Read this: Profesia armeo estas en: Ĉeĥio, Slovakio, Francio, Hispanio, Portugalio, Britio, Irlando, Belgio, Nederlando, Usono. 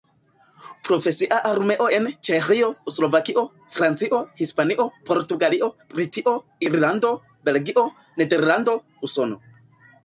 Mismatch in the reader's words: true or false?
true